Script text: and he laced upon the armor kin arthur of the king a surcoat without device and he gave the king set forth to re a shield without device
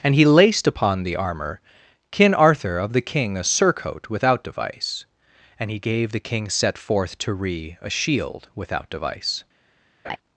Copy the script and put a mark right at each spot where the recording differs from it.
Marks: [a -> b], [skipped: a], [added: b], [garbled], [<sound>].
and he laced upon the armor kin arthur of the king a surcoat without device and he gave the king set forth to re a shield without device [laugh]